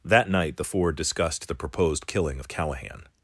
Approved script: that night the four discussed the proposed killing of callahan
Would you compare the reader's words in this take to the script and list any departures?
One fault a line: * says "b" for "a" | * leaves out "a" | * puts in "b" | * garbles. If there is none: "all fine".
all fine